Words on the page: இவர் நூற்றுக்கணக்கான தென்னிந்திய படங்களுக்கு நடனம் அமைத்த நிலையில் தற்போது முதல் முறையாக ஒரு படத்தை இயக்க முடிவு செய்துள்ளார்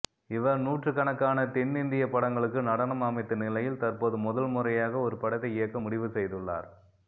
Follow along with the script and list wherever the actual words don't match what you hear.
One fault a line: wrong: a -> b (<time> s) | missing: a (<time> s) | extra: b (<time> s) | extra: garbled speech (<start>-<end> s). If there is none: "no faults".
no faults